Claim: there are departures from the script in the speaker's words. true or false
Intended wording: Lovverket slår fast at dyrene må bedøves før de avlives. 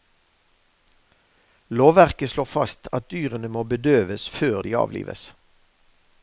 false